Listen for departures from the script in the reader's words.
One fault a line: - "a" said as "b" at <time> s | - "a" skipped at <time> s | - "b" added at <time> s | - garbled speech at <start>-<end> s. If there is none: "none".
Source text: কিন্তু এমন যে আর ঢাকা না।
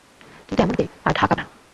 none